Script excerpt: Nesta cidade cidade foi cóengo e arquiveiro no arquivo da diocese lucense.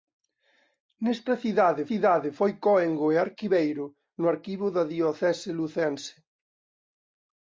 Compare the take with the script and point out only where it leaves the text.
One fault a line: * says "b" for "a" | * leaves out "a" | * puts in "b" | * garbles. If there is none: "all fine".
all fine